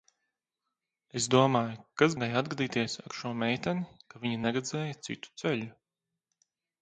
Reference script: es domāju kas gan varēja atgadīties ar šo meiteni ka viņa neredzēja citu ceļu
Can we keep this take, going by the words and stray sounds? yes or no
no